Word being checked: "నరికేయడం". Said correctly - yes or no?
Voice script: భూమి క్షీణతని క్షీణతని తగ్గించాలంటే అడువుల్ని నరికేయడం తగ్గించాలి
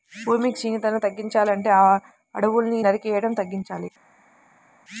yes